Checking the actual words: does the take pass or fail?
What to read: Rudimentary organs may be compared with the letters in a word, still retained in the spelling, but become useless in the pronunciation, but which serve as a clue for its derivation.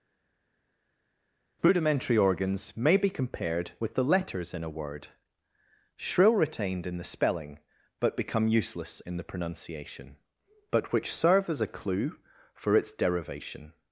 fail